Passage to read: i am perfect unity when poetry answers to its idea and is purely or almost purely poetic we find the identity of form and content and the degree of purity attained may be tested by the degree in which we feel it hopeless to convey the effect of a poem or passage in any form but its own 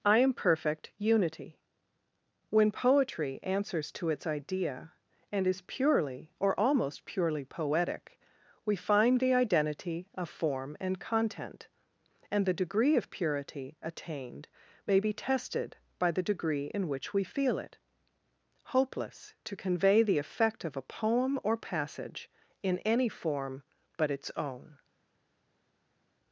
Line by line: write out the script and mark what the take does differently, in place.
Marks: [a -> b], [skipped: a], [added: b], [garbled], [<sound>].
i am perfect unity when poetry answers to its idea and is purely or almost purely poetic we find the identity of form and content and the degree of purity attained may be tested by the degree in which we feel it hopeless to convey the effect of a poem or passage in any form but its own